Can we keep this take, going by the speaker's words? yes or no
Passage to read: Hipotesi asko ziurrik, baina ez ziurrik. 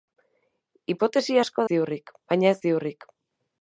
yes